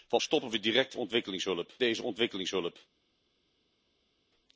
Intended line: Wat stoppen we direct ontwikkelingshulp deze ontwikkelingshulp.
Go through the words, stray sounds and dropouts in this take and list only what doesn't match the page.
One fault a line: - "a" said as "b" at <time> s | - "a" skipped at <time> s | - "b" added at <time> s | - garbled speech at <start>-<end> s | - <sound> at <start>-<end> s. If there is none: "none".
none